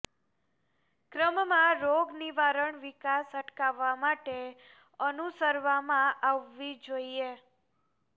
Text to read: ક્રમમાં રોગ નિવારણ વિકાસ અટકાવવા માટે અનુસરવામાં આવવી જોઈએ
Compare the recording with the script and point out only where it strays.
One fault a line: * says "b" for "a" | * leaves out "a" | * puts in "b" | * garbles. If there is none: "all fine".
all fine